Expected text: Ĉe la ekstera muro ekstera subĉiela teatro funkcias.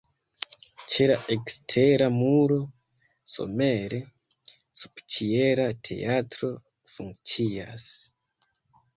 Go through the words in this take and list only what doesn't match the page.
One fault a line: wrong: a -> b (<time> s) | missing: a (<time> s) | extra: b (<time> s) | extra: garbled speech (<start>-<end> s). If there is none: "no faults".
wrong: ekstera -> somere (3.3 s)